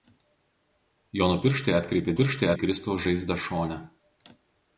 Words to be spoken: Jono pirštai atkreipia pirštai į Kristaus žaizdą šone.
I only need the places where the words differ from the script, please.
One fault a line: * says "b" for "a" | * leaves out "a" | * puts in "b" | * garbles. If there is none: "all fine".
all fine